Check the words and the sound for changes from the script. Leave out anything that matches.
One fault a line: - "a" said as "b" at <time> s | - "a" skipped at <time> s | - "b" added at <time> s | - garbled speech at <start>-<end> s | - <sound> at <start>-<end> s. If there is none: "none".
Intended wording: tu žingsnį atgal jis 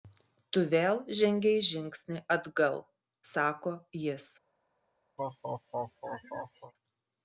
- "vėl žengei" added at 0.7 s
- "sako" added at 3.3 s
- laugh at 5.2-6.7 s